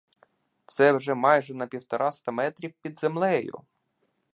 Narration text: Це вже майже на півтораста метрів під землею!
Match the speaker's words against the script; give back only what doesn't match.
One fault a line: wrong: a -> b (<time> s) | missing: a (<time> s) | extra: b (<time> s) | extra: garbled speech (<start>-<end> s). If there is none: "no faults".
no faults